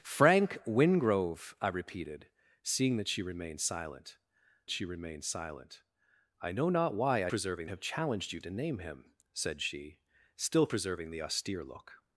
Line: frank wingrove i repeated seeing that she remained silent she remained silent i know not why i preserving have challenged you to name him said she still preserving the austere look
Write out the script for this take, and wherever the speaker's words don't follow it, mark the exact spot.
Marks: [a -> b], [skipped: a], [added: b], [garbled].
frank wingrove i repeated seeing that she remained silent she remained silent i know not why i preserving have challenged you to name him said she still preserving the austere look